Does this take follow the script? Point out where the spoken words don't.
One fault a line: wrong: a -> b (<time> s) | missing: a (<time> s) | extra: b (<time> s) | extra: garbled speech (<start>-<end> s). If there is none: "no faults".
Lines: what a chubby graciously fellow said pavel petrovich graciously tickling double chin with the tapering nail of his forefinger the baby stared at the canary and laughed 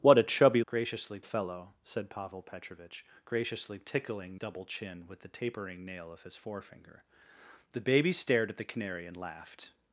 no faults